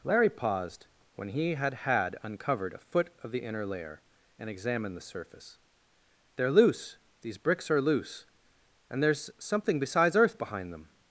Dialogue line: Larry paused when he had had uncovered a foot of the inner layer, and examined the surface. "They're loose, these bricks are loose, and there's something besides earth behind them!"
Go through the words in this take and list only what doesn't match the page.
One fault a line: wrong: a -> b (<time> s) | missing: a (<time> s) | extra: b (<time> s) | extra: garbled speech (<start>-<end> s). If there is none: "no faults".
no faults